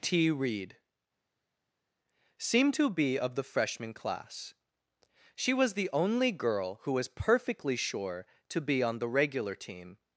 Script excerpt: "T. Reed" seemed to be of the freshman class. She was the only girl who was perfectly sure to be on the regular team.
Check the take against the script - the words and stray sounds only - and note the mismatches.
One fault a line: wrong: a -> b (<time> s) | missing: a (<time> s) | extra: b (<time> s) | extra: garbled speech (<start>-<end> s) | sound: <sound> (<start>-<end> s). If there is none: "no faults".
no faults